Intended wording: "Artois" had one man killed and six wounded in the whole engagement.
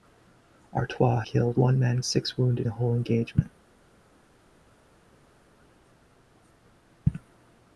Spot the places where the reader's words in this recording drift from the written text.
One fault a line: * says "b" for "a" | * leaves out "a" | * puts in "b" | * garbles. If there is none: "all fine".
* says "killed" for "had"
* leaves out "killed and"
* leaves out "in"